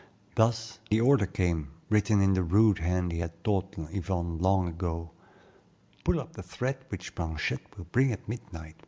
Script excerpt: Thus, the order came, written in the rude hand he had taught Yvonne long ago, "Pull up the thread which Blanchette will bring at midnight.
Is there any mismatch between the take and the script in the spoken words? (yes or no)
no